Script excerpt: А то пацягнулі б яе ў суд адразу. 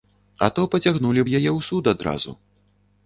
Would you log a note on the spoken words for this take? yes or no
no